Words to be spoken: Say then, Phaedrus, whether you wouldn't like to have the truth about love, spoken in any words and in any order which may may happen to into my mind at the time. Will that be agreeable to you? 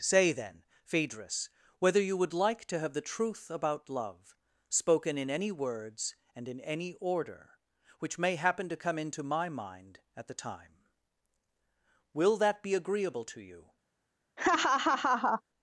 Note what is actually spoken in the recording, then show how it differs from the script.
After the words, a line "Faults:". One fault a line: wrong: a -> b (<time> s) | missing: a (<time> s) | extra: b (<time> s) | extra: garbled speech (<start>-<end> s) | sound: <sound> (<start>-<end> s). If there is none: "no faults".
Say then, Phaedrus, whether you would like to have the truth about love, spoken in any words and in any order which may happen to come into my mind at the time. Will that be agreeable to you?
Faults:
wrong: wouldn't -> would (2.2 s)
missing: may (8.3 s)
extra: come (8.8 s)
sound: laugh (14.4-15.4 s)